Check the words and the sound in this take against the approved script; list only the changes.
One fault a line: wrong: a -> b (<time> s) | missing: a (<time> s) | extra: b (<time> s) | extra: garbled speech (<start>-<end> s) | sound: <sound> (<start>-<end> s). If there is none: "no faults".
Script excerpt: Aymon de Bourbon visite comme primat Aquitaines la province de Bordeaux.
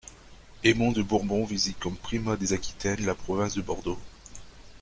extra: des (2.4 s)